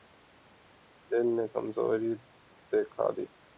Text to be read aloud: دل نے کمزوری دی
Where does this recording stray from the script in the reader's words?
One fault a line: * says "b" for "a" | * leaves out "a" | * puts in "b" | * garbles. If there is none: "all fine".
* puts in "دکھا"